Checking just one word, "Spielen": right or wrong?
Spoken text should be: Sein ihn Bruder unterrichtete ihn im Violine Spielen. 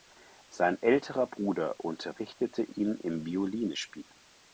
right